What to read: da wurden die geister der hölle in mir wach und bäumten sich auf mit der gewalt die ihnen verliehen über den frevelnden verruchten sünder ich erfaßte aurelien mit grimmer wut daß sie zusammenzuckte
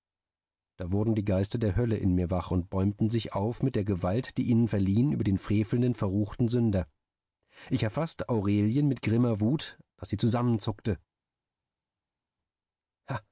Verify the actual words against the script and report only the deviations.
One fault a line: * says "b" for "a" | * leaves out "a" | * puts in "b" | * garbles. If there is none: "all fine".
all fine